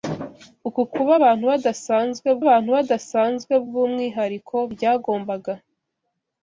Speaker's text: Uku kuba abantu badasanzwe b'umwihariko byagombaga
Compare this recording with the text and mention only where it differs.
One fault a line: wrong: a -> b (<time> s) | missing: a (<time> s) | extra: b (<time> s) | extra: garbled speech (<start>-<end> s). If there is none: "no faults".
extra: abantu badasanzwe (2.4 s)